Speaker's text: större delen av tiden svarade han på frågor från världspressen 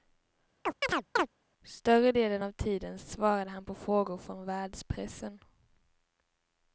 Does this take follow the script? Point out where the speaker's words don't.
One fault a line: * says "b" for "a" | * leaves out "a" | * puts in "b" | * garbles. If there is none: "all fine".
all fine